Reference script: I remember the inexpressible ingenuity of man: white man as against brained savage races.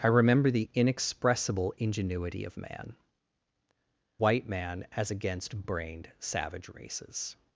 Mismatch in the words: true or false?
false